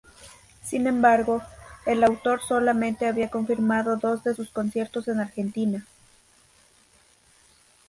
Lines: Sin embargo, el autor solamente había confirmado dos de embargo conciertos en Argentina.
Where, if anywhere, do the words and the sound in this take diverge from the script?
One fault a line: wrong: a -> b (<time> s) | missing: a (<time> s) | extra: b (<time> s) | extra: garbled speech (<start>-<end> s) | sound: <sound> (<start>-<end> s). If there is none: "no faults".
wrong: embargo -> sus (4.3 s)